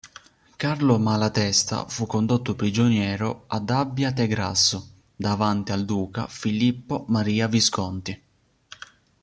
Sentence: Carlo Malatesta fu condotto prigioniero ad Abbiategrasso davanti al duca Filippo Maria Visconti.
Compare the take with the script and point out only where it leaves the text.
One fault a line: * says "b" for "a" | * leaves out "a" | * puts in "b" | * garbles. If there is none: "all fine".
all fine